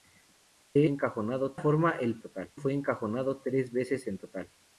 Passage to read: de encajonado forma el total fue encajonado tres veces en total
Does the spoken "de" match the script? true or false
true